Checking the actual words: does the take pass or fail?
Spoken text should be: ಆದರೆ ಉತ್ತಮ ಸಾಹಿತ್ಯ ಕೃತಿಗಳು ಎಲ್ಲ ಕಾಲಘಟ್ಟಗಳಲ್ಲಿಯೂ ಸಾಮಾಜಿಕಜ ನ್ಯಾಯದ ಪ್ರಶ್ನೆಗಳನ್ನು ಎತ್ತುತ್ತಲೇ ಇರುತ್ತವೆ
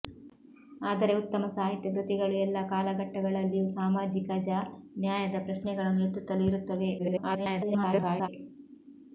fail